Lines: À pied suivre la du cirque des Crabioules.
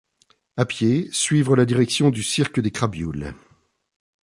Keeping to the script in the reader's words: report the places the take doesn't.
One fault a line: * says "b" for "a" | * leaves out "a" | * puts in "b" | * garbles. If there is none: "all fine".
* puts in "direction"